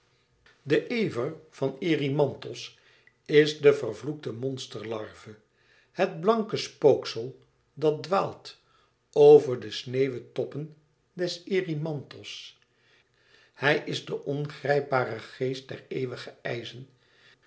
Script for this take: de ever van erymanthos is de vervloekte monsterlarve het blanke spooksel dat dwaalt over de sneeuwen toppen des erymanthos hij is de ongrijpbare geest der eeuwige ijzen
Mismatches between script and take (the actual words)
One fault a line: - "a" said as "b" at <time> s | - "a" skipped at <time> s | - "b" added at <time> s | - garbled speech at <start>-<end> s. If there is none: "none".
none